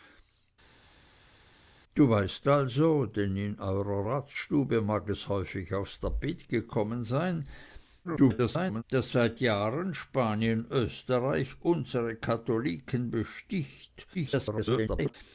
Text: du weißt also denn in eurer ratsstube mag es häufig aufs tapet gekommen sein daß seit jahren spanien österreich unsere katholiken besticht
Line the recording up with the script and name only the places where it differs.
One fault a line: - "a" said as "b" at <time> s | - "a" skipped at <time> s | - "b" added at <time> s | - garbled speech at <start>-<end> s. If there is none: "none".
- garbled speech at 8.0-8.8 s
- garbled speech at 14.1-15.1 s